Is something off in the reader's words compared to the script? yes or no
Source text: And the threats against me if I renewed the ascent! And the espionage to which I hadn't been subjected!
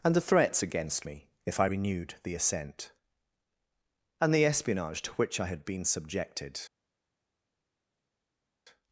yes